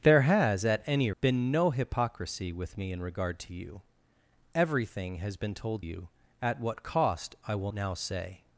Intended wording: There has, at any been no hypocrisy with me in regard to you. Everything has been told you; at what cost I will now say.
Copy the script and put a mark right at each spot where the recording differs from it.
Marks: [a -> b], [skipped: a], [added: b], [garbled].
There has, at any been no hypocrisy with me in regard to you. Everything has been told you; at what cost I will now say.